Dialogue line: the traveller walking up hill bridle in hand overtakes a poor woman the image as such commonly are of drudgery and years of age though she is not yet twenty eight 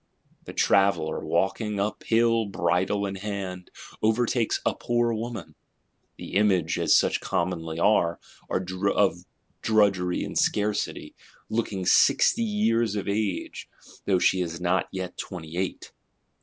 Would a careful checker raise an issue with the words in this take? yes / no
yes